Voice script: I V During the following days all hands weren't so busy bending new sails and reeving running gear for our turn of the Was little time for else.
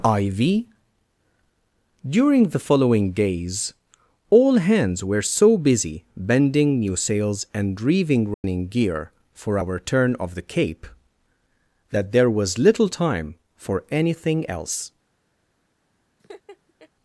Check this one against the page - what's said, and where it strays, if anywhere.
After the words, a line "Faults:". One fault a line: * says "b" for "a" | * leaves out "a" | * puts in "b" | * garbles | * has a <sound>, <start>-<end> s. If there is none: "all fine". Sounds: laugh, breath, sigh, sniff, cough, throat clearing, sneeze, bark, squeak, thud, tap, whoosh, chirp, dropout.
I V During the following days all hands were so busy bending new sails and reeving running gear for our turn of the Cape that there was little time for anything else.
Faults:
* says "were" for "weren't"
* has a dropout, 8.3-8.4 s
* puts in "Cape that there"
* puts in "anything"
* has a laugh, 16.2-16.9 s